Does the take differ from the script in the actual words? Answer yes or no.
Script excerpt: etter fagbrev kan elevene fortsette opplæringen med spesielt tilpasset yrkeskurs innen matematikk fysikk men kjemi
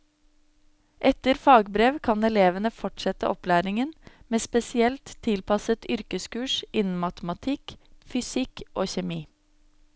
yes